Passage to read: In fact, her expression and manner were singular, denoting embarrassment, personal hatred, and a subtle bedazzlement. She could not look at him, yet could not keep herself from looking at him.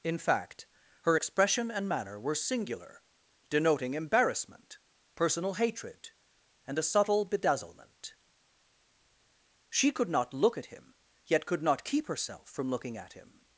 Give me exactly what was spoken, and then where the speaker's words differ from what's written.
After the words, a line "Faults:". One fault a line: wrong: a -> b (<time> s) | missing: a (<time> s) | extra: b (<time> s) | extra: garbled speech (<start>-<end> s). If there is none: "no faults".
In fact, her expression and manner were singular, denoting embarrassment, personal hatred, and a subtle bedazzlement. She could not look at him, yet could not keep herself from looking at him.
Faults:
no faults